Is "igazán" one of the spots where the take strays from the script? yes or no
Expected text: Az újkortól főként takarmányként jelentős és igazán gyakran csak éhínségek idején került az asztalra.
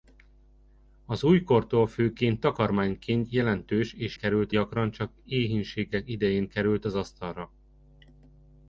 yes